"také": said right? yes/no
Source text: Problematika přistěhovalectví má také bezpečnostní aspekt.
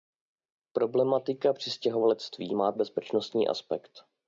no